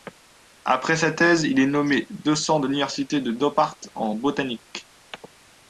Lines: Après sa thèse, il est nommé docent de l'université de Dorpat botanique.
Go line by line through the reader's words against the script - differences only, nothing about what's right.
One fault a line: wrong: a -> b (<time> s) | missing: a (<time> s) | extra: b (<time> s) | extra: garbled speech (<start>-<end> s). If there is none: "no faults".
extra: en (3.9 s)